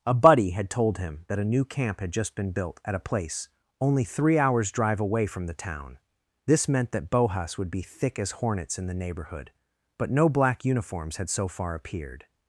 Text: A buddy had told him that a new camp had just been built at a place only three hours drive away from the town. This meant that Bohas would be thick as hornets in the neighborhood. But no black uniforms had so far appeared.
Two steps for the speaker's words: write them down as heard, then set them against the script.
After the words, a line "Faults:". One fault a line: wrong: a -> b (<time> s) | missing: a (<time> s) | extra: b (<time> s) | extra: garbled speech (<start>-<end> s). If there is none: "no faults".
A buddy had told him that a new camp had just been built at a place only three hours drive away from the town. This meant that Bohas would be thick as hornets in the neighborhood. But no black uniforms had so far appeared.
Faults:
no faults